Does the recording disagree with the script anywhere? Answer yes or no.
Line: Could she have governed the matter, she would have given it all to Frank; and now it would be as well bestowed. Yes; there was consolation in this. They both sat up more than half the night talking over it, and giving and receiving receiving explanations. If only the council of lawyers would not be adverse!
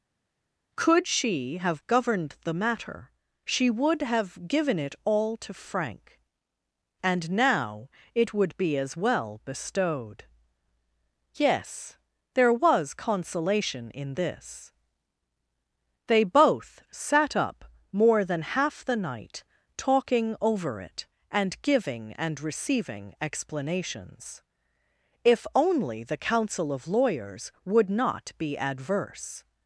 yes